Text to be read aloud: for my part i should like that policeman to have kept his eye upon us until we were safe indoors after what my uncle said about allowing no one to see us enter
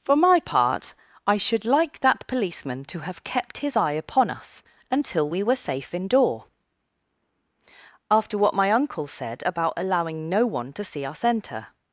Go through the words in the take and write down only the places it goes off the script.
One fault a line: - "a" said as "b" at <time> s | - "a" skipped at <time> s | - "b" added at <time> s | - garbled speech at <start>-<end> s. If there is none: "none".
- "indoors" said as "indoor" at 5.9 s